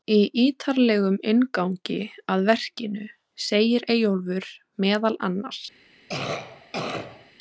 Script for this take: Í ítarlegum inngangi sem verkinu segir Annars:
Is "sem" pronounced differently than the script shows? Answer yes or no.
yes